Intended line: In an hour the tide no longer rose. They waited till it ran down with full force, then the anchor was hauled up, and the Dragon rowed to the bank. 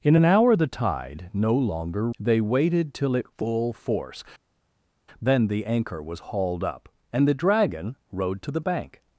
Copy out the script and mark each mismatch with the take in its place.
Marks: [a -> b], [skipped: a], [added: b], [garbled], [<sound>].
In an hour the tide no longer [skipped: rose.] They waited till it [skipped: ran down with] full force, then the anchor was hauled up, and the Dragon rowed to the bank.